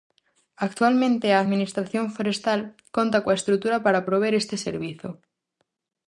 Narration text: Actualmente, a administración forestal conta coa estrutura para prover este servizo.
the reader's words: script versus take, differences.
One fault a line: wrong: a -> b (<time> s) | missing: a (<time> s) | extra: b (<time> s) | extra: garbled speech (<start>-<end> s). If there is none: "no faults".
no faults